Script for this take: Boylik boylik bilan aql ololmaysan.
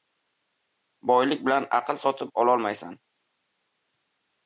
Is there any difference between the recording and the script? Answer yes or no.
yes